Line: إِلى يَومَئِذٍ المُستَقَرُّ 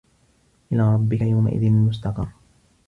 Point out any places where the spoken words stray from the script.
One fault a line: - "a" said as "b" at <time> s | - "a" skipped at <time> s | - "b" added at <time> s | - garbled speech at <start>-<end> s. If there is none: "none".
- "رَبِّكَ" added at 0.9 s